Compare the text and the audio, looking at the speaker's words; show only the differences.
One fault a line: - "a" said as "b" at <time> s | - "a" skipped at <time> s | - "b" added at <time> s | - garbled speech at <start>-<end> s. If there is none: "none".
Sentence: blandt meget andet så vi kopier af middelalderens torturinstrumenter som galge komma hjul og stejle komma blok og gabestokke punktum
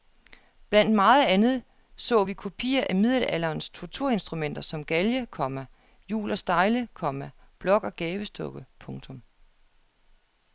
none